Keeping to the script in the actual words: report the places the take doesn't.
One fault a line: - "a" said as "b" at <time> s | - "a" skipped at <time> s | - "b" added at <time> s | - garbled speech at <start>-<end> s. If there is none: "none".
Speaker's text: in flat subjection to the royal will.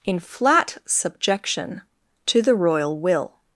none